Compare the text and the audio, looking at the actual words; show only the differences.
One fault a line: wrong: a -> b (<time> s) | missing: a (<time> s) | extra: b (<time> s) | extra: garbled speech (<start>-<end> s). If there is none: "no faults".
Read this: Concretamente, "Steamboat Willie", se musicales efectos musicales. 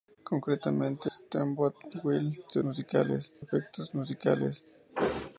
no faults